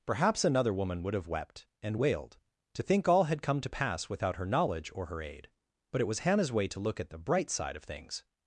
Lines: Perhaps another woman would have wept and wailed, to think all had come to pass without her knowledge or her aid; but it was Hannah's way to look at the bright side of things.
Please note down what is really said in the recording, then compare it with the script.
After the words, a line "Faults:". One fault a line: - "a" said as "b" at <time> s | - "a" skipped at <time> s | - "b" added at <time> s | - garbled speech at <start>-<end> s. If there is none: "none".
Perhaps another woman would have wept and wailed, to think all had come to pass without her knowledge or her aid; but it was Hannah's way to look at the bright side of things.
Faults:
none